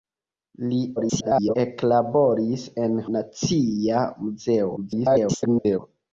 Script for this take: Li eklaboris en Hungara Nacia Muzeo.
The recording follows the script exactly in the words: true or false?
false